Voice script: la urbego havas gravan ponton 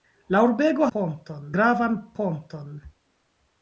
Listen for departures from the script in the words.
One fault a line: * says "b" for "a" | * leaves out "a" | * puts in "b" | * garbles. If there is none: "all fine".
* says "ponton" for "havas"